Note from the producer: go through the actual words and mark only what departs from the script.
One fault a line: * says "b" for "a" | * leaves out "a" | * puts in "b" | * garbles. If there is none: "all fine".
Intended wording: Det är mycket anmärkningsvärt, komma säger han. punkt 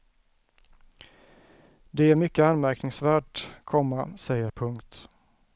* leaves out "han"